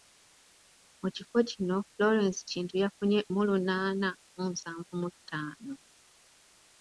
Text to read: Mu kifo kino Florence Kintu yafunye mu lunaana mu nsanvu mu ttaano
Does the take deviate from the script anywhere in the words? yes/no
no